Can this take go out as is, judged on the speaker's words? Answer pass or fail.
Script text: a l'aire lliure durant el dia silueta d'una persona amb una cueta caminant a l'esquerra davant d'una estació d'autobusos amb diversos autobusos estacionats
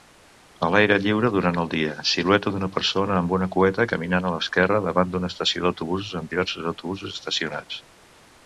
pass